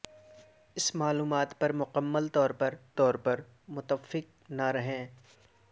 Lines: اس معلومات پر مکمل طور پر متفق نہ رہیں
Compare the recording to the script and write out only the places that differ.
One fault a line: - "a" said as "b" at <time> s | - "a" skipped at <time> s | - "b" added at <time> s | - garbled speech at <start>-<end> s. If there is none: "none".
- "طور پر" added at 2.9 s